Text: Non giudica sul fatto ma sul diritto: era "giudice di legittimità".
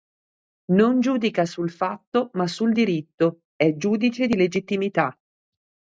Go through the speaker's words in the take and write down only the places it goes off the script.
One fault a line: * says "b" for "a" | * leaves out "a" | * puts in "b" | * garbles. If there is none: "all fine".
* says "è" for "era"